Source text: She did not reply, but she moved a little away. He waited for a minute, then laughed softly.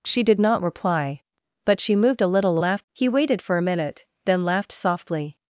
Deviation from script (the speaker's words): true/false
true